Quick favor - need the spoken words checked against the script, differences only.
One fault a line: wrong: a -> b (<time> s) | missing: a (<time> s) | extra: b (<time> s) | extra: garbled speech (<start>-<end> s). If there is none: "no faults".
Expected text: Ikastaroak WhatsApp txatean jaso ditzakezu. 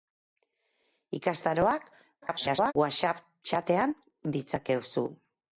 extra: garbled speech (2.2-2.7 s)
missing: jaso (3.9 s)